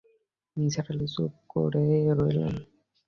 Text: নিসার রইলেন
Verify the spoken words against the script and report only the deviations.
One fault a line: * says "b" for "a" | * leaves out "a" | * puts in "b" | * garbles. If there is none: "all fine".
* puts in "আলি চুপ করে"